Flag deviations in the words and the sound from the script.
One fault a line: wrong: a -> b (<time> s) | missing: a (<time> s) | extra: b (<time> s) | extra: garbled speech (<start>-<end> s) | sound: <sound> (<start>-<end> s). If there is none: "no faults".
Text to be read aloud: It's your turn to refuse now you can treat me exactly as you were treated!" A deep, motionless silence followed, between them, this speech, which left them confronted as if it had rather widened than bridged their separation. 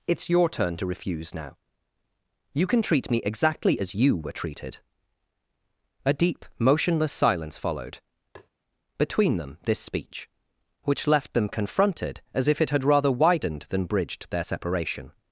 sound: tap (8.3-8.5 s)